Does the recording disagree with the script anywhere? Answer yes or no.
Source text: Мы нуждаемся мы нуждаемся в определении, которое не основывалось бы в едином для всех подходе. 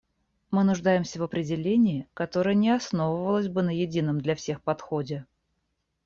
yes